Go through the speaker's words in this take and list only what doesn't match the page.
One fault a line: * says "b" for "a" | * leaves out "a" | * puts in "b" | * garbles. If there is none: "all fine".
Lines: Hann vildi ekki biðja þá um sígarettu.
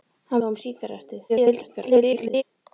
* leaves out "vildi ekki biðja"
* garbles